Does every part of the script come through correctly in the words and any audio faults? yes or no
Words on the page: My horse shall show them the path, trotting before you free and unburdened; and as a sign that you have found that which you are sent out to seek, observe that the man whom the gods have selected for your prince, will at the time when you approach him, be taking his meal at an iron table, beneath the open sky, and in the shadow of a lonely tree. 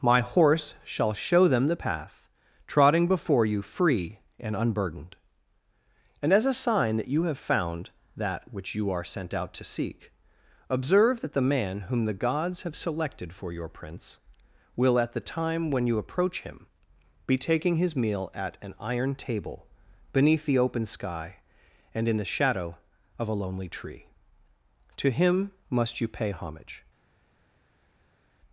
no